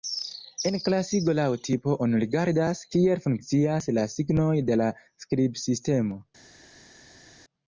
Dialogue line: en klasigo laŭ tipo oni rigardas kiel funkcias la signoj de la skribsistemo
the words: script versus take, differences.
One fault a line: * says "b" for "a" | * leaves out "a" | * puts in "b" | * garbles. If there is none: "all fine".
all fine